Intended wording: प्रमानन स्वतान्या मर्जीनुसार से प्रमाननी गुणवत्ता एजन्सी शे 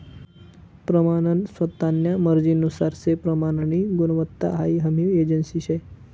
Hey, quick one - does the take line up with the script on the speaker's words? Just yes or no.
no